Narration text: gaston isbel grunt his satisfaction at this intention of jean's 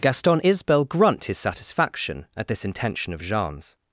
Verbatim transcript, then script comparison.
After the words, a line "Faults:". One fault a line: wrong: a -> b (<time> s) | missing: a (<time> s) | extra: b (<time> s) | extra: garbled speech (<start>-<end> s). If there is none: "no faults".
gaston isbel grunt his satisfaction at this intention of jean's
Faults:
no faults